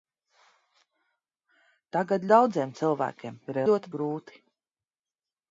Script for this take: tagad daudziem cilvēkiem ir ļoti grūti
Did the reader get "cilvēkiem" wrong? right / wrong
right